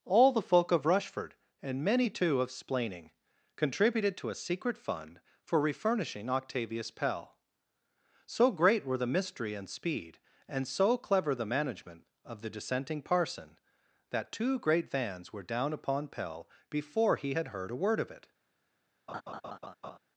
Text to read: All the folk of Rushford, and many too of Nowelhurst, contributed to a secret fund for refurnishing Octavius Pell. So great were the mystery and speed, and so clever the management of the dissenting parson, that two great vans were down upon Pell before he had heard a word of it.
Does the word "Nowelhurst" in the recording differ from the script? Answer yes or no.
yes